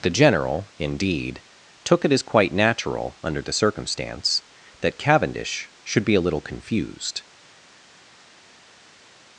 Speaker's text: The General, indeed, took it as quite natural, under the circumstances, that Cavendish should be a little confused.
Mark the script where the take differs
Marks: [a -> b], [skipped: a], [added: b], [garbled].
The General, indeed, took it as quite natural, under the [circumstances, -> circumstance] that Cavendish should be a little confused.